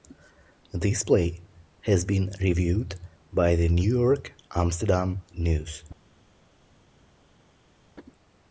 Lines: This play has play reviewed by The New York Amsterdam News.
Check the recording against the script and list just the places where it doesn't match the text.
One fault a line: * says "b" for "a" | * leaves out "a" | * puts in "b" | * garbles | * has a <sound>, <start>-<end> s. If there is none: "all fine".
* says "been" for "play"